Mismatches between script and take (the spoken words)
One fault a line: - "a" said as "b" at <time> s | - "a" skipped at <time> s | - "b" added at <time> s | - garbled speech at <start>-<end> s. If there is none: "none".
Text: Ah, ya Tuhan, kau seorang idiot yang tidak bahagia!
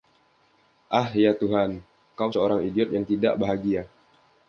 none